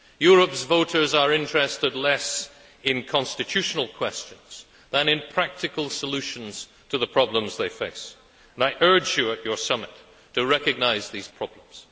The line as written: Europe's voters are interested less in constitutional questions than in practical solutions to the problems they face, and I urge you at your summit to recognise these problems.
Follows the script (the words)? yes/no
yes